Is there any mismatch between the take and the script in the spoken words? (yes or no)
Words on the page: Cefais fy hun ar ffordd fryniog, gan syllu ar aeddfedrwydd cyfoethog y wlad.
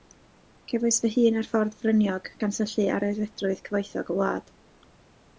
no